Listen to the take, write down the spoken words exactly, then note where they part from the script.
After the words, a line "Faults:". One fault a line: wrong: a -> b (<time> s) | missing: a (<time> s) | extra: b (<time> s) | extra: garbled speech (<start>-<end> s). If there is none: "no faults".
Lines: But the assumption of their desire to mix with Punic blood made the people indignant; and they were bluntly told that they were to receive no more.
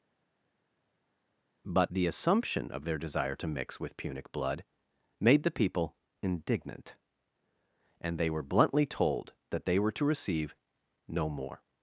But the assumption of their desire to mix with Punic blood made the people indignant; and they were bluntly told that they were to receive no more.
Faults:
no faults